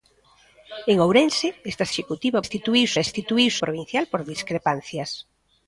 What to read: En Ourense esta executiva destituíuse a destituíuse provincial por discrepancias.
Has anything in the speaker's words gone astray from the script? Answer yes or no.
no